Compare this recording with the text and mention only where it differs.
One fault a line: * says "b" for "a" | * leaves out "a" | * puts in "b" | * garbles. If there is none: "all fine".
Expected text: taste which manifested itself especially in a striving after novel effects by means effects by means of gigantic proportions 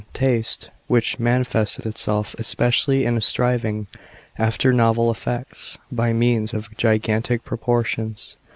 * leaves out "effects by means"